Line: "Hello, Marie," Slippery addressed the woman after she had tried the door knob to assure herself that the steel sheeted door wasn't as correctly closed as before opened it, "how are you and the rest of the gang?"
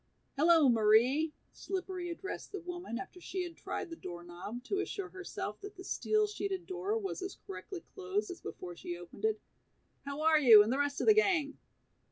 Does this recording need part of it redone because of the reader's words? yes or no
yes